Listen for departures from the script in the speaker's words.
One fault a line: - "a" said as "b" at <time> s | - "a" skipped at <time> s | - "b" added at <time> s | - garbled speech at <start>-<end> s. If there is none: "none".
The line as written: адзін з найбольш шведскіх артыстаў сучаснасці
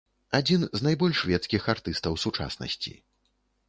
none